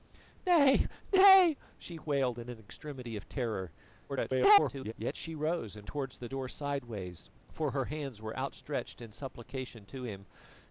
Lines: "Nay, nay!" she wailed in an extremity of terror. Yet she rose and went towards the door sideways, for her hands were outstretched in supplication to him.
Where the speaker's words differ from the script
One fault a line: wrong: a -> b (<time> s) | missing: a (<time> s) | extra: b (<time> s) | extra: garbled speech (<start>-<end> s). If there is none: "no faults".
extra: garbled speech (4.1-4.9 s)
missing: went (5.9 s)